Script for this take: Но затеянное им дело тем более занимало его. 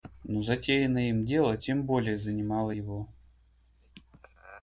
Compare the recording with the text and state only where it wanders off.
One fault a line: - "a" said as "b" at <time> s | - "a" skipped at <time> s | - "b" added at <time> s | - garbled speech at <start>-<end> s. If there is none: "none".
none